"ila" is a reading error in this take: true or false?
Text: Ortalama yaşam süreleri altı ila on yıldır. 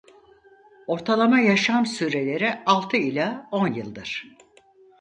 false